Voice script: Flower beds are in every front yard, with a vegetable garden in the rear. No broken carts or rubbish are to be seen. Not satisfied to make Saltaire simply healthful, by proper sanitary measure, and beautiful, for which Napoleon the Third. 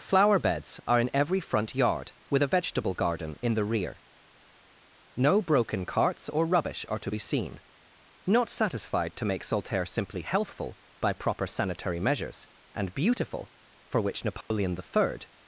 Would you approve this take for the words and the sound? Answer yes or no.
no